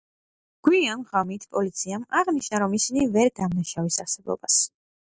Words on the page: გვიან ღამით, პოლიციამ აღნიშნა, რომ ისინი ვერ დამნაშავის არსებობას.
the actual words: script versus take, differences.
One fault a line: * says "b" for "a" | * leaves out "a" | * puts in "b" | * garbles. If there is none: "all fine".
all fine